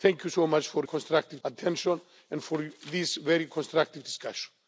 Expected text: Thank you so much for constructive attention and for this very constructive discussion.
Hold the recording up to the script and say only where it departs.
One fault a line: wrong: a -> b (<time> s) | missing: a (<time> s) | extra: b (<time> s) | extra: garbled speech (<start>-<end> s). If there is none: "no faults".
no faults